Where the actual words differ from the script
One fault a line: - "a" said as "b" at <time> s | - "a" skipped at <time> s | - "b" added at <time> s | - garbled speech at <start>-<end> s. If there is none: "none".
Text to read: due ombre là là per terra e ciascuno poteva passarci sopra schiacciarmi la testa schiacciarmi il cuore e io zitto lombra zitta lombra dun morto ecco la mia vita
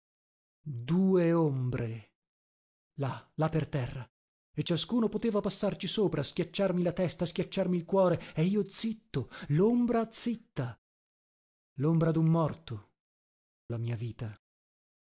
- "ecco" skipped at 12.9 s